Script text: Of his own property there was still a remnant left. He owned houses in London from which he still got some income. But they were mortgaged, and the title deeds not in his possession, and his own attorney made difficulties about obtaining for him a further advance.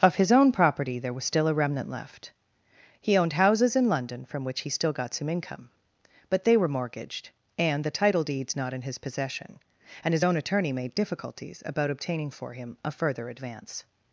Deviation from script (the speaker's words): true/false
false